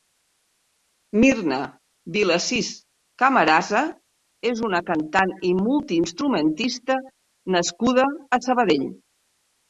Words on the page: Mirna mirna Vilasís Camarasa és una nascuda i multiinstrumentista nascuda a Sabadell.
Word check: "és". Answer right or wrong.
right